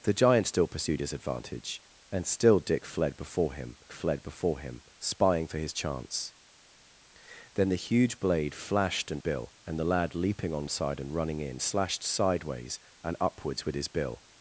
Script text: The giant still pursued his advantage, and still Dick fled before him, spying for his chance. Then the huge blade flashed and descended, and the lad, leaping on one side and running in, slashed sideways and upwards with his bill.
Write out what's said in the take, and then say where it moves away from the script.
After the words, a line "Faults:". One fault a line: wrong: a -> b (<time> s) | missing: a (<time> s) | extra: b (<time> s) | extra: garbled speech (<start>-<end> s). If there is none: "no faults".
The giant still pursued his advantage, and still Dick fled before him fled before him, spying for his chance. Then the huge blade flashed and bill, and the lad, leaping on side and running in, slashed sideways and upwards with his bill.
Faults:
extra: fled before him (3.9 s)
wrong: descended -> bill (9.2 s)
missing: one (10.7 s)